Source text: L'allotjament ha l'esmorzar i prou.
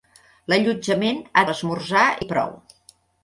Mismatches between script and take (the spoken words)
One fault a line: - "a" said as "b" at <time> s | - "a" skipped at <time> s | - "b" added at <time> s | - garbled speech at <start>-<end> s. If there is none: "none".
none